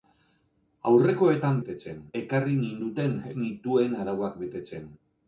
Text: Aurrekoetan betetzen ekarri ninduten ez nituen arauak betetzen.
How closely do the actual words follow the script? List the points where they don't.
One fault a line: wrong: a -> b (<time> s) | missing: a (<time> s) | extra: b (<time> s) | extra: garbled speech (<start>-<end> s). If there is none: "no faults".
no faults